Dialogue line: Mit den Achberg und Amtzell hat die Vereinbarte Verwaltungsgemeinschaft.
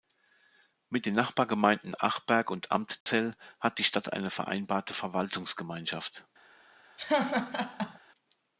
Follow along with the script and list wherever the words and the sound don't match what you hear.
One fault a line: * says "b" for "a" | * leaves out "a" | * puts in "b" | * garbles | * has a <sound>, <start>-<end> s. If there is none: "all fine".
* puts in "Nachbargemeinden"
* has a dropout, 3.0-3.1 s
* puts in "Stadt eine"
* has a laugh, 7.0-8.0 s